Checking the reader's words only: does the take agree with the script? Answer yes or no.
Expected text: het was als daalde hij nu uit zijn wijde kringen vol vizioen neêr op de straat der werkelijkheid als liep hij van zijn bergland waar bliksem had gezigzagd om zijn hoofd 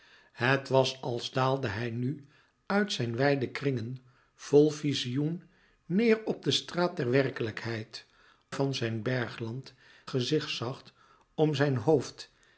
no